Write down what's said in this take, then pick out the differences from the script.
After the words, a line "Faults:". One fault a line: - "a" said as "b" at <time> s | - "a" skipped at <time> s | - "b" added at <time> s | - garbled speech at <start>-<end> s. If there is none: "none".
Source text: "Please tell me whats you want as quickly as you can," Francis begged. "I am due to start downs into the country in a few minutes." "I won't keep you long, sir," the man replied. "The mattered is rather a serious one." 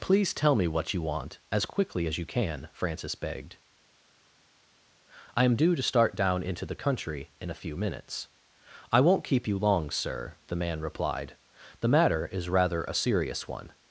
"Please tell me what you want as quickly as you can," Francis begged. "I am due to start down into the country in a few minutes." "I won't keep you long, sir," the man replied. "The matter is rather a serious one."
Faults:
- "whats" said as "what" at 0.7 s
- "downs" said as "down" at 6.2 s
- "mattered" said as "matter" at 11.9 s